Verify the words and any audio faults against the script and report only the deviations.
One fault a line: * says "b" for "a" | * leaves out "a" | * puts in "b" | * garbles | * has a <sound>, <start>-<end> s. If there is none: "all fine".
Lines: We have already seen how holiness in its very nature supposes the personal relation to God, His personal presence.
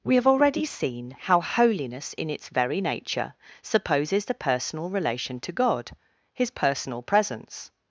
all fine